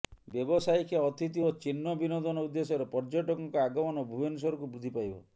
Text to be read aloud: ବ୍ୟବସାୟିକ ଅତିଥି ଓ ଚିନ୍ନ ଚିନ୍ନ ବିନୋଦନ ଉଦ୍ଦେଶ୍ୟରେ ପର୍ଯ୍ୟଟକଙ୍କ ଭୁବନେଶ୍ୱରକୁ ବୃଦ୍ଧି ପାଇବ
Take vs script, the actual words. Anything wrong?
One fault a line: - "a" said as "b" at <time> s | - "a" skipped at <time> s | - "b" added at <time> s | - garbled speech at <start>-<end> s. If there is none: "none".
- "ଚିନ୍ନ" skipped at 1.9 s
- "ଆଗମନ" added at 3.6 s